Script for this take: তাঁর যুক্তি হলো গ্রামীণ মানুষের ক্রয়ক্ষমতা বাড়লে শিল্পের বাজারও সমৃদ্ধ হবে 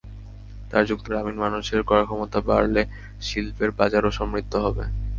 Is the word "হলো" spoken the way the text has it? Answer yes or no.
no